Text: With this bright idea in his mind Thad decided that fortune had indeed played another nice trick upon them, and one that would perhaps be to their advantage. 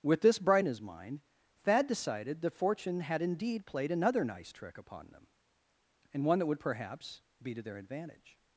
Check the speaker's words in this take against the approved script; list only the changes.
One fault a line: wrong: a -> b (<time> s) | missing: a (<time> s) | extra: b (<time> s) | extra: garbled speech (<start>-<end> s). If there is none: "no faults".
missing: idea (0.7 s)